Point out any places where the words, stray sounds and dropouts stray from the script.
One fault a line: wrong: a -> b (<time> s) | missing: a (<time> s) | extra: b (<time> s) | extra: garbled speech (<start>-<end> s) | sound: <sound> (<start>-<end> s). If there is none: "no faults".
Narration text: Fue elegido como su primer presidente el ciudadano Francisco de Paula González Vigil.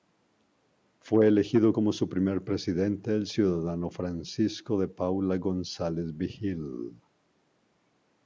no faults